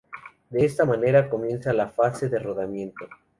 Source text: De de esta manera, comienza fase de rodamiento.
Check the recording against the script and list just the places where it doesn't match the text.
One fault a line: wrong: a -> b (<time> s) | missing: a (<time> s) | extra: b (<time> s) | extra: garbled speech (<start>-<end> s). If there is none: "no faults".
missing: de (0.7 s)
extra: la (1.7 s)